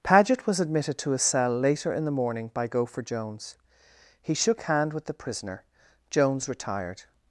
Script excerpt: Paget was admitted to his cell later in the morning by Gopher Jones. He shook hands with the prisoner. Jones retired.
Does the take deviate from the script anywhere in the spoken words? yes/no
yes